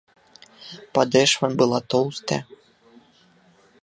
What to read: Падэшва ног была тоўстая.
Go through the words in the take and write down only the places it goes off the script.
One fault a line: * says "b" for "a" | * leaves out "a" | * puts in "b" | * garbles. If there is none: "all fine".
* leaves out "ног"